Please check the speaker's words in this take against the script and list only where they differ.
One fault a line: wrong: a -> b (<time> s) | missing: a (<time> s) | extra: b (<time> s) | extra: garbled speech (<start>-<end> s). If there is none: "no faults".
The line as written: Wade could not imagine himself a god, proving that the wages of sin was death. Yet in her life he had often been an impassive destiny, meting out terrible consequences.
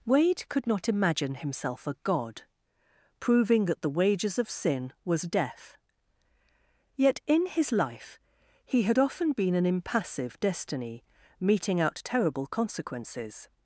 wrong: her -> his (7.5 s)